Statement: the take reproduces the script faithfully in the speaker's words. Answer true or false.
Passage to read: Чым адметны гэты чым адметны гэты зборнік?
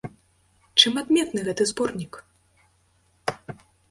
false